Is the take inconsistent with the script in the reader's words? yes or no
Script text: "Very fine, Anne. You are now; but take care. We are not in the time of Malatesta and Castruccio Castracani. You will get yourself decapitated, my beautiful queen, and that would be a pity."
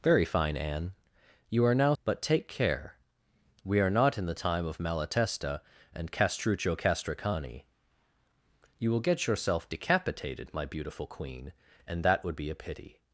no